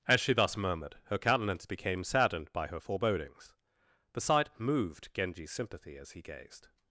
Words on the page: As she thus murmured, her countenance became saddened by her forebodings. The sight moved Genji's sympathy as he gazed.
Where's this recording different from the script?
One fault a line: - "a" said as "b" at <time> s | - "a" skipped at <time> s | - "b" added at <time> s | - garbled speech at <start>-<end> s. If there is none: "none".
none